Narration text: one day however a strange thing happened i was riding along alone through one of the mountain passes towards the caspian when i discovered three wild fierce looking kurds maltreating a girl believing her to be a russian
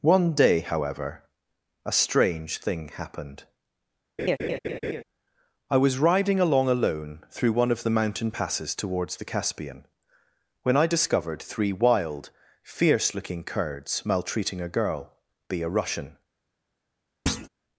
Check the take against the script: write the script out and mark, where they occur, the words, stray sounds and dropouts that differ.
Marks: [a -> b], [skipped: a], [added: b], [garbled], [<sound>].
one day however a strange thing happened [laugh] i was riding along alone through one of the mountain passes towards the caspian when i discovered three wild fierce looking kurds maltreating a girl [skipped: believing her to] be a russian [thud]